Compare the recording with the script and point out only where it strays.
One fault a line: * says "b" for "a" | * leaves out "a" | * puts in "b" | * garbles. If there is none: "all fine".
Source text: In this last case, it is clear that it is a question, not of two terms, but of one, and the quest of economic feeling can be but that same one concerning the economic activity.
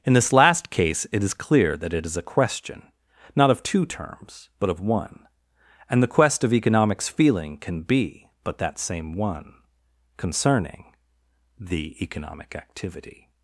* says "economics" for "economic"